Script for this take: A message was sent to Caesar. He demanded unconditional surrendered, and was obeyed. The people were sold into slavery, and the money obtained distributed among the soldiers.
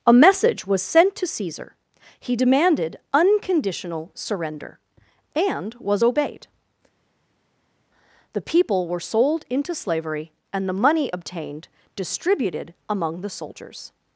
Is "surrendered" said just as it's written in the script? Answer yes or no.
no